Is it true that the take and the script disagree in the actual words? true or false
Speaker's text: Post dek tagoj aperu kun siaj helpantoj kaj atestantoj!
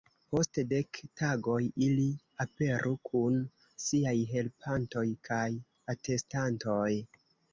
true